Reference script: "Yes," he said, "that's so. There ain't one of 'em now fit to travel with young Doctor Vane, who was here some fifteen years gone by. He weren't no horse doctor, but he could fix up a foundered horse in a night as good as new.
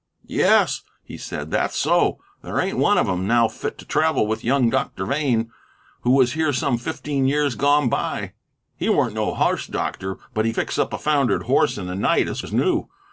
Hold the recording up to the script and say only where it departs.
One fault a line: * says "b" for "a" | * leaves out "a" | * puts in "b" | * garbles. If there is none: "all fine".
* leaves out "could"
* leaves out "good"